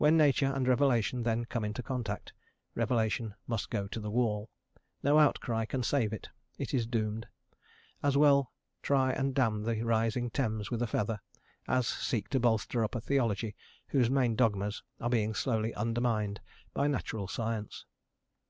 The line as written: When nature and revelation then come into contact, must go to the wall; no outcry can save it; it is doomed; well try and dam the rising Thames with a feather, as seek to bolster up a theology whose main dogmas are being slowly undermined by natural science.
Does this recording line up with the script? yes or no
no